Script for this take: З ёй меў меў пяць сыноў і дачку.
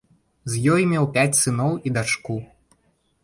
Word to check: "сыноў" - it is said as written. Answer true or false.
true